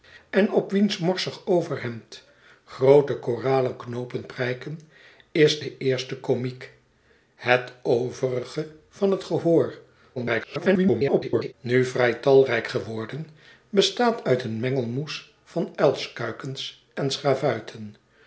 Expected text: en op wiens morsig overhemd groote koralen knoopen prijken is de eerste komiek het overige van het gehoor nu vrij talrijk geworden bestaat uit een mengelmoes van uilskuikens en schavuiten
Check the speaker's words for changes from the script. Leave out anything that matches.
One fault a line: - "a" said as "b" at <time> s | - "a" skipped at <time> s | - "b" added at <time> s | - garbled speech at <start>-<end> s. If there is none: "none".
- garbled speech at 10.2-11.5 s